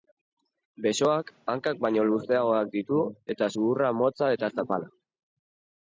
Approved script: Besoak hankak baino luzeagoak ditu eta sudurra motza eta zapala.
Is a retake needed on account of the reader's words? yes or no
no